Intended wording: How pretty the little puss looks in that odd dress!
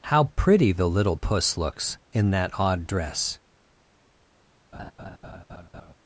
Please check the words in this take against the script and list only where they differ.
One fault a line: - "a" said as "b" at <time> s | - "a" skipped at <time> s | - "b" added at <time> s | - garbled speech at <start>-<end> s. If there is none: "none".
none